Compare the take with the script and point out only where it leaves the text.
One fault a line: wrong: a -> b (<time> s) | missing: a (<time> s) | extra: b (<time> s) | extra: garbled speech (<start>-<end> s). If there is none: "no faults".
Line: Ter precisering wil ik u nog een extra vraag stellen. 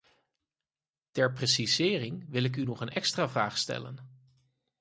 no faults